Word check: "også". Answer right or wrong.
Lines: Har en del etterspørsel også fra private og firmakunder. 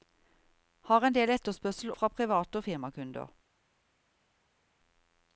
wrong